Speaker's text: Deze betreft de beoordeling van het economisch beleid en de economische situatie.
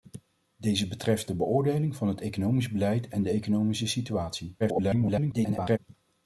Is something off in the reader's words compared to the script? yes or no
yes